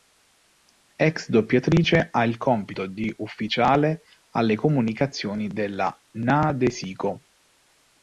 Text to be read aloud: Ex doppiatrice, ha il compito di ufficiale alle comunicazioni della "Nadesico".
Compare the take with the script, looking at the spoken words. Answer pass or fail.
pass